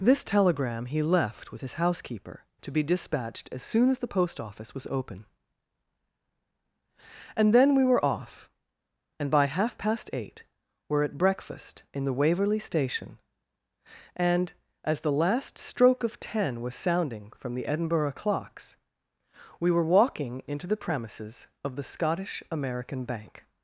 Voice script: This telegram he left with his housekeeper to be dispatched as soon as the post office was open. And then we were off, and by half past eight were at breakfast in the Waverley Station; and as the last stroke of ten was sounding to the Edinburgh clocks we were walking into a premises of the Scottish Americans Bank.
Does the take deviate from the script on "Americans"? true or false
true